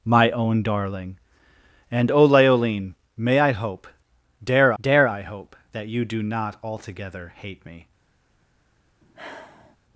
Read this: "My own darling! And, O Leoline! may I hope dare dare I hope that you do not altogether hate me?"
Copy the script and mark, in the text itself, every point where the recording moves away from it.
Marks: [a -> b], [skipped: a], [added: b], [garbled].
"My own darling! And, O Leoline! may I hope dare dare I hope that you do not altogether hate me?"